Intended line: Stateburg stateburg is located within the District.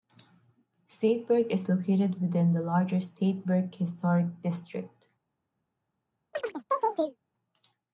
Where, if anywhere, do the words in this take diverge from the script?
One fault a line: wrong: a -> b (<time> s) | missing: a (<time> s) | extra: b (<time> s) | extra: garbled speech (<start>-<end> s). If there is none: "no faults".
missing: stateburg (1.5 s)
extra: larger Stateburg Historic (2.6 s)